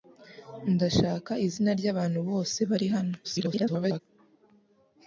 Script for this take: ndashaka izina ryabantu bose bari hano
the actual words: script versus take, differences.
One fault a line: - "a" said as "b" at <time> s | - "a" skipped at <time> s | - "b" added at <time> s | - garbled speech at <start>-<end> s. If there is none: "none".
- garbled speech at 3.2-4.0 s